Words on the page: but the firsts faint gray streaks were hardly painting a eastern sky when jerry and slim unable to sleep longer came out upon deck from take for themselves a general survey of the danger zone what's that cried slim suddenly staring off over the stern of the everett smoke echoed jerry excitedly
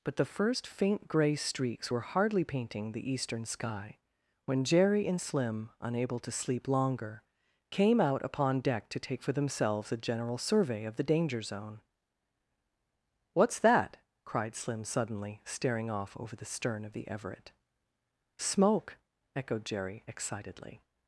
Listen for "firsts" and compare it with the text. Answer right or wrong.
wrong